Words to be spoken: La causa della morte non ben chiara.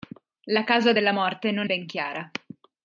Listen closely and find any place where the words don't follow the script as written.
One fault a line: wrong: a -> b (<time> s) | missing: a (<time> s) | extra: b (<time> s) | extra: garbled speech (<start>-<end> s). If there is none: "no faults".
no faults